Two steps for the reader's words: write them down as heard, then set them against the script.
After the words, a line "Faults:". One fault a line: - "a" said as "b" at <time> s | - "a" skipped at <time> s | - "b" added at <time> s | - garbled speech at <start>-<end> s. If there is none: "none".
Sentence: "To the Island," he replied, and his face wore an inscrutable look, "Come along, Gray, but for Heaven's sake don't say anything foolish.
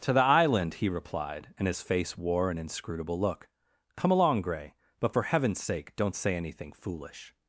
"To the Island," he replied, and his face wore an inscrutable look, "Come along, Gray, but for Heaven's sake don't say anything foolish.
Faults:
none